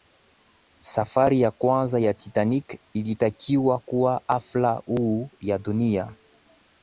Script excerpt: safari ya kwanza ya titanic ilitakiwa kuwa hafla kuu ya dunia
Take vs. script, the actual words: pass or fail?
pass